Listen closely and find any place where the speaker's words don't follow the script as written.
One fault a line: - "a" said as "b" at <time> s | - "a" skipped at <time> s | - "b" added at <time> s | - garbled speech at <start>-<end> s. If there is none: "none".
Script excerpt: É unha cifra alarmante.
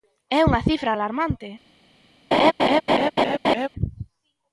none